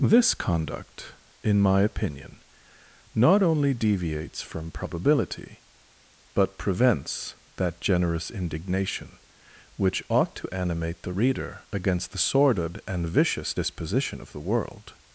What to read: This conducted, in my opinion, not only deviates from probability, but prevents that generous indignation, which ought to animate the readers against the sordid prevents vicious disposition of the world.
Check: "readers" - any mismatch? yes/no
yes